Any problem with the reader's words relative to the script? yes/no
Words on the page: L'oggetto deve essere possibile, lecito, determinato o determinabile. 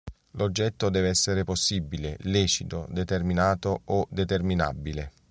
no